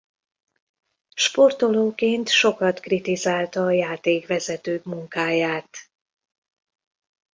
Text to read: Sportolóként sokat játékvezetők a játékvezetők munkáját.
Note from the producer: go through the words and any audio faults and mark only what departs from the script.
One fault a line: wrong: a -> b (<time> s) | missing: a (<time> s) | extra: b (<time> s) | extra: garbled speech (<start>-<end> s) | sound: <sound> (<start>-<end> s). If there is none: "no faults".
wrong: játékvezetők -> kritizálta (2.8 s)